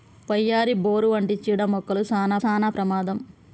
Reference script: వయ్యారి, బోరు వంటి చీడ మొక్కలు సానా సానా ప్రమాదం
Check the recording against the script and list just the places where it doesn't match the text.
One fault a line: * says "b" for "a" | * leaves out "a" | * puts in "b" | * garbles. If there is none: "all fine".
all fine